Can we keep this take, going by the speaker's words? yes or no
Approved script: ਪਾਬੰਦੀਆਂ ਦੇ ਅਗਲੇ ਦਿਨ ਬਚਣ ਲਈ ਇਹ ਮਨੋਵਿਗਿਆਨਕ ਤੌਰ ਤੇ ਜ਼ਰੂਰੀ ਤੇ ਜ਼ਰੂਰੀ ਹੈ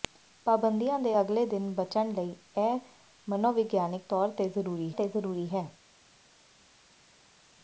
yes